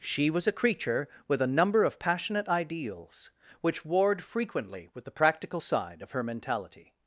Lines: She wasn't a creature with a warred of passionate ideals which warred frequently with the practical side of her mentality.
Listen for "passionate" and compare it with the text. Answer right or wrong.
right